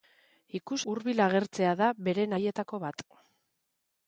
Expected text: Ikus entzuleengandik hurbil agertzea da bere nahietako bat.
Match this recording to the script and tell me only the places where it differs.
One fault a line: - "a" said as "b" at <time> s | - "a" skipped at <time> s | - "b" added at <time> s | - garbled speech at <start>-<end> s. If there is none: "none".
- "entzuleengandik" skipped at 0.8 s